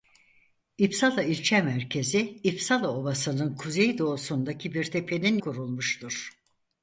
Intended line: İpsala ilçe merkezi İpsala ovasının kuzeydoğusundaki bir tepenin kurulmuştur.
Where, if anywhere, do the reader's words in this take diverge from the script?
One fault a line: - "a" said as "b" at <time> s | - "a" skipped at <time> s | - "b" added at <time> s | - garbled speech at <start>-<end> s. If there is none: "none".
none